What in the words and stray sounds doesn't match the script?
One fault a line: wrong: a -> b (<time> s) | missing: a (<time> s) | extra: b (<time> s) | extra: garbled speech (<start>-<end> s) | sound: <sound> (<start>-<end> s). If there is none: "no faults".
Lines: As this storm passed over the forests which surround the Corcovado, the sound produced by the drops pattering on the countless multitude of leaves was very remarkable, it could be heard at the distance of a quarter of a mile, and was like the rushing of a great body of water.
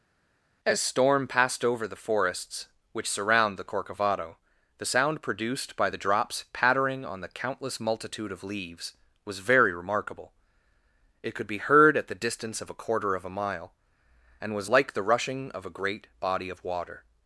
missing: this (0.8 s)